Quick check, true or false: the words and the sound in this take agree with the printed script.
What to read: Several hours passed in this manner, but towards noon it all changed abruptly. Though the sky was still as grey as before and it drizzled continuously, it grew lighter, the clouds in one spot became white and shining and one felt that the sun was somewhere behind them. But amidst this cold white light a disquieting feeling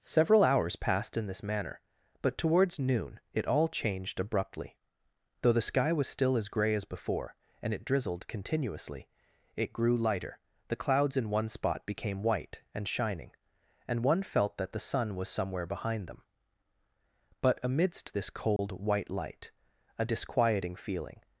false